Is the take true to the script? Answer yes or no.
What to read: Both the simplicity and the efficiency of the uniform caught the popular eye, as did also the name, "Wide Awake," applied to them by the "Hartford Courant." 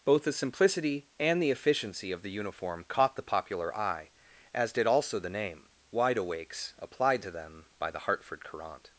no